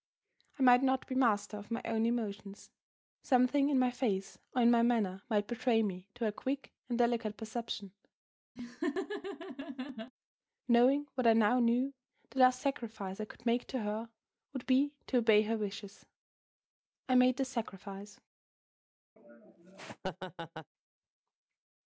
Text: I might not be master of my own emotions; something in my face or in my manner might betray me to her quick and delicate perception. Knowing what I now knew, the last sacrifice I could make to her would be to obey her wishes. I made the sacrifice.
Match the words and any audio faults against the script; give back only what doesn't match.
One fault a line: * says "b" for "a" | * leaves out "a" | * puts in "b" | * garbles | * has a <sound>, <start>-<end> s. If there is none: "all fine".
* has a laugh, 8.6-10.1 s
* has a laugh, 19.2-20.7 s